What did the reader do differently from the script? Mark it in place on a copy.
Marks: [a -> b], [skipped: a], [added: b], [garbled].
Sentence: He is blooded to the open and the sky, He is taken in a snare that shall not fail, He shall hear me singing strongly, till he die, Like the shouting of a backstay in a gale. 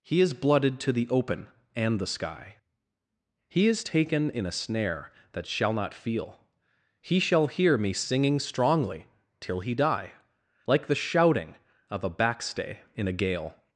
He is blooded to the open and the sky, He is taken in a snare that shall not [fail, -> feel] He shall hear me singing strongly, till he die, Like the shouting of a backstay in a gale.